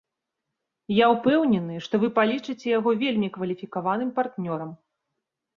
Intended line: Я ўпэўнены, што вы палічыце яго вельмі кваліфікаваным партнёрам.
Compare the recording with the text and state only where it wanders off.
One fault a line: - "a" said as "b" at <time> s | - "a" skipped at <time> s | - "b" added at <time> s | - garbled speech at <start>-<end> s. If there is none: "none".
none